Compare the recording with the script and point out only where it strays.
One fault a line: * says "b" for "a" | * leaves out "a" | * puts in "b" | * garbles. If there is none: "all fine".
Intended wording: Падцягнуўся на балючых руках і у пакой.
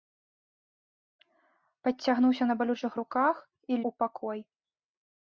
all fine